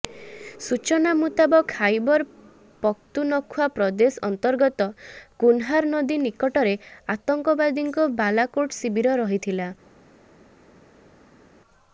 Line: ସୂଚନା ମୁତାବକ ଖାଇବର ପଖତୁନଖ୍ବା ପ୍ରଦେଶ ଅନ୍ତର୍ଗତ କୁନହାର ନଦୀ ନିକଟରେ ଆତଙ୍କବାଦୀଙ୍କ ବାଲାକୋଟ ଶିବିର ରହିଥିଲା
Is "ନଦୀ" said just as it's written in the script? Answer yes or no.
yes